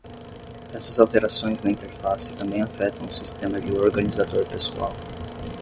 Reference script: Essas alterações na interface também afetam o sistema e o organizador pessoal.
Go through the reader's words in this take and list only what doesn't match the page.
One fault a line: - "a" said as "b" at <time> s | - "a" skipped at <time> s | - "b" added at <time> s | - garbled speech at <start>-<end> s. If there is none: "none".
none